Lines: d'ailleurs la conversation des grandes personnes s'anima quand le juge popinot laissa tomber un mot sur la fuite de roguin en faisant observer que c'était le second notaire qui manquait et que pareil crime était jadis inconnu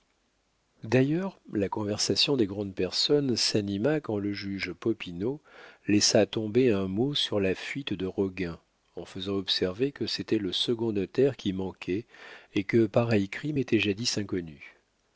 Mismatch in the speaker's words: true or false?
false